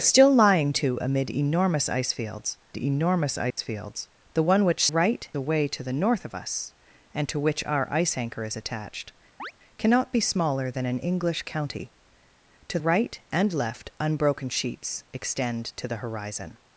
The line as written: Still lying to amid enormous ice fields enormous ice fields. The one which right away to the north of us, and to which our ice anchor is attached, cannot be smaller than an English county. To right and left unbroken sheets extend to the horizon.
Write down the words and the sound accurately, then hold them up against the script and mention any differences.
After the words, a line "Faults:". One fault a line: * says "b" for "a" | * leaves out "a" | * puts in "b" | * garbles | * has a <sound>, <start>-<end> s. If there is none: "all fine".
Still lying to amid enormous ice fields enormous ice fields. The one which right away to the north of us, and to which our ice anchor is attached, cannot be smaller than an English county. To right and left unbroken sheets extend to the horizon.
Faults:
* has a dropout, 3.5-3.6 s
* has a chirp, 9.4-9.5 s